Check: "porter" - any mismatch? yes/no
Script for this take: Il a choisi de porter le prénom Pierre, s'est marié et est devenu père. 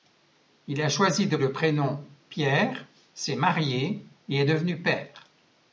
yes